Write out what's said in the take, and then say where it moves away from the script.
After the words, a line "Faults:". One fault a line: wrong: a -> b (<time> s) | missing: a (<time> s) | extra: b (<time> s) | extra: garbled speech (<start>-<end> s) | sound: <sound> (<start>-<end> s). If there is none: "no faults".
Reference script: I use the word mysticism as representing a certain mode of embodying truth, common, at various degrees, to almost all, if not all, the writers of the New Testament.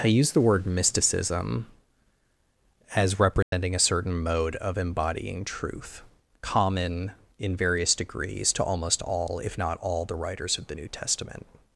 I use the word mysticism as representing a certain mode of embodying truth, common, in various degrees, to almost all, if not all, the writers of the New Testament.
Faults:
sound: dropout (3.4-3.5 s)
wrong: at -> in (7.4 s)